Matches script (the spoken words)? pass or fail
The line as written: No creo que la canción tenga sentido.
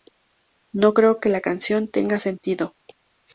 pass